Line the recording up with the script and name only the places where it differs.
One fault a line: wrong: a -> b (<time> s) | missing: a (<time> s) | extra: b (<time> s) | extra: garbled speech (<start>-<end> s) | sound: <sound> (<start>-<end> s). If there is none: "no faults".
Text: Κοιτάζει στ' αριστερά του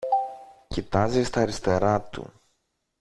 no faults